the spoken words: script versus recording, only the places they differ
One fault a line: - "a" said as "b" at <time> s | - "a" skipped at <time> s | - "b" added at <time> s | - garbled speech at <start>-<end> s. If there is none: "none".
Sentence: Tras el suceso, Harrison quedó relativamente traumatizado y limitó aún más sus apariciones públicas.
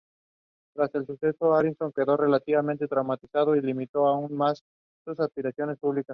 none